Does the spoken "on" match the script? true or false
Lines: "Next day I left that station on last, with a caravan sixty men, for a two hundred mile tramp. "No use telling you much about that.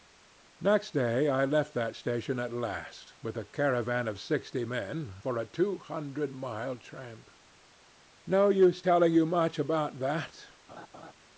false